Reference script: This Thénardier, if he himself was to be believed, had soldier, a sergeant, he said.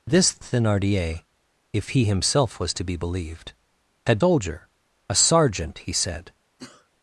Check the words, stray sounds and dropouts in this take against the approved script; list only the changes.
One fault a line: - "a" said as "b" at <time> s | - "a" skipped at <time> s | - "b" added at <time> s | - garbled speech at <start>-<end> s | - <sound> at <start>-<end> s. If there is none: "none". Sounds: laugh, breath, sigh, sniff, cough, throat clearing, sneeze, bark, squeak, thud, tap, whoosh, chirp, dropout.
- sneeze at 6.6-6.9 s